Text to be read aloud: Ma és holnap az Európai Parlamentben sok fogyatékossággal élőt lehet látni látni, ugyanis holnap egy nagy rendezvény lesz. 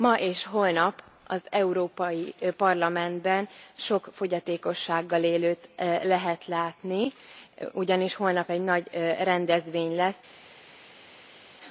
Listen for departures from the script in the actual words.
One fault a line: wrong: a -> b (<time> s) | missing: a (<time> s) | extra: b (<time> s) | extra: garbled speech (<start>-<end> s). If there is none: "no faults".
missing: látni (7.1 s)